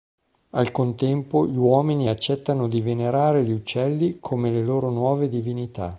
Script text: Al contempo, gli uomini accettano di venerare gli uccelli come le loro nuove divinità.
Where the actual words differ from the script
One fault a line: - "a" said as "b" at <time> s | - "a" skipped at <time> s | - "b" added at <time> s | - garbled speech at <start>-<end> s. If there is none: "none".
none